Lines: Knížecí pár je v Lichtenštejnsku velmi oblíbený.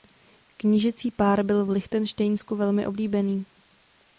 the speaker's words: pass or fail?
fail